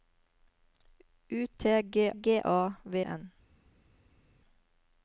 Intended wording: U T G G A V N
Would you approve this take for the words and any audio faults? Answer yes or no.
yes